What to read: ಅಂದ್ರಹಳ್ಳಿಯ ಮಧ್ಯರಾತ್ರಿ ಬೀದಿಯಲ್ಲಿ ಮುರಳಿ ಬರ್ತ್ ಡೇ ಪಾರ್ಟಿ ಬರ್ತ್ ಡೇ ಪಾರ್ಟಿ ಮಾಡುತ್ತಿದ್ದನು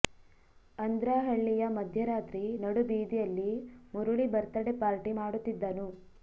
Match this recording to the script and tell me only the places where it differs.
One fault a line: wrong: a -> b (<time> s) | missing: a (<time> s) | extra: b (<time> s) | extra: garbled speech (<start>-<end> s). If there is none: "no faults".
extra: ನಡು (2.6 s)
missing: ಬರ್ತ್ ಡೇ ಪಾರ್ಟಿ (5.1 s)